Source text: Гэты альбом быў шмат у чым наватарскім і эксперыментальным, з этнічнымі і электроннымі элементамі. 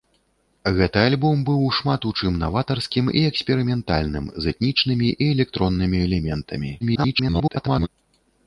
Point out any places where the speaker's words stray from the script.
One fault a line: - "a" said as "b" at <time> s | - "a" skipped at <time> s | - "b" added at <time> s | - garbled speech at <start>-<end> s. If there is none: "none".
- garbled speech at 6.8-7.9 s